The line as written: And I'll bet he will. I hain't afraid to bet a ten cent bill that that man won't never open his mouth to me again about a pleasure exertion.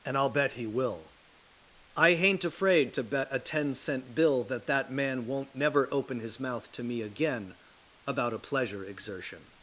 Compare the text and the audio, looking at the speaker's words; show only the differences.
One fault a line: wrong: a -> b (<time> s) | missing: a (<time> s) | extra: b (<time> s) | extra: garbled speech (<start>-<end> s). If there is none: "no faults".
no faults